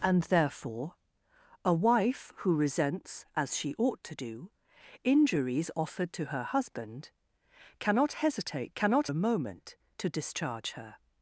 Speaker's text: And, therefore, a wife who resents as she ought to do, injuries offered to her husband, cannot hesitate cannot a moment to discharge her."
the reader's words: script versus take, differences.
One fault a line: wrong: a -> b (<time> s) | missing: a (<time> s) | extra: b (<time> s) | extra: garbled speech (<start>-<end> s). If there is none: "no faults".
no faults